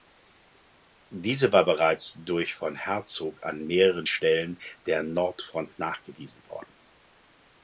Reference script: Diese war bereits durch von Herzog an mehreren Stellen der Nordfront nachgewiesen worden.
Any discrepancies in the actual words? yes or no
no